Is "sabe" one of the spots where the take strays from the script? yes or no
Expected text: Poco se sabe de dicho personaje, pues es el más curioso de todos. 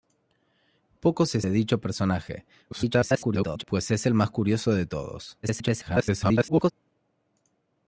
yes